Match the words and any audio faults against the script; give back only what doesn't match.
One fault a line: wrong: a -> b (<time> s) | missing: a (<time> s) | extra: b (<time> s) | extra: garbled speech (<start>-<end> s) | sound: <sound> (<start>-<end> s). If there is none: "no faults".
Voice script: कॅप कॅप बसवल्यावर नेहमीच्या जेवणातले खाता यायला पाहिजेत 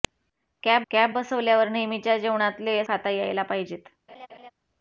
sound: laugh (4.1-4.5 s)